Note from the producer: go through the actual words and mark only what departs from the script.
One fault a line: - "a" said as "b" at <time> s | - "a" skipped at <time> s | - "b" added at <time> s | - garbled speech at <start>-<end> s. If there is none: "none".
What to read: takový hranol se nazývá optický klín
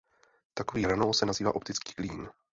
none